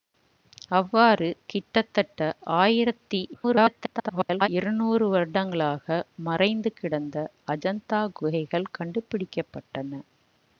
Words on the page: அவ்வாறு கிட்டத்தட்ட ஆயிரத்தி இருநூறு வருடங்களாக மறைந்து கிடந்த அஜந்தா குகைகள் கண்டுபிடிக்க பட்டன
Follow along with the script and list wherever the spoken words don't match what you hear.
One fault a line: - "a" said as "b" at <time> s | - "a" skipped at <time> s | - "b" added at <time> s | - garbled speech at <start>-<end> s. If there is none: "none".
- garbled speech at 3.3-4.5 s